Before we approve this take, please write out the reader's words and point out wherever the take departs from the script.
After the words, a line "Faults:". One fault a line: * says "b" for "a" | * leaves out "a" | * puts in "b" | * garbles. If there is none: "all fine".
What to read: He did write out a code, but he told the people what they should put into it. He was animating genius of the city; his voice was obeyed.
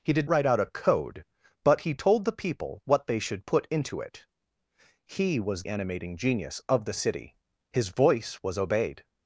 He did write out a code, but he told the people what they should put into it. He was animating genius of the city; his voice was obeyed.
Faults:
all fine